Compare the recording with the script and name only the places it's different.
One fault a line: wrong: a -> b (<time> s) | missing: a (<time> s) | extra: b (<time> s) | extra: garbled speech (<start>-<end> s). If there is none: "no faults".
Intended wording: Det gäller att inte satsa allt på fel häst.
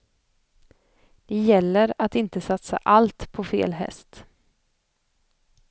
no faults